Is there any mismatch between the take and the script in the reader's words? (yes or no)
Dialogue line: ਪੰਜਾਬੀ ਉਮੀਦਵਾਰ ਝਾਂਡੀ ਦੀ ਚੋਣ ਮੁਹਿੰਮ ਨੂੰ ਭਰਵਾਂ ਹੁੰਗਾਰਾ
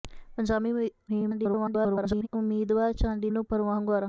yes